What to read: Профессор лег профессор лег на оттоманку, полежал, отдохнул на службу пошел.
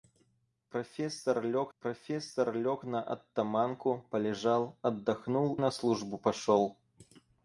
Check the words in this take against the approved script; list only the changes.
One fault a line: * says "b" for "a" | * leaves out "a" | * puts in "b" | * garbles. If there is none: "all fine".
all fine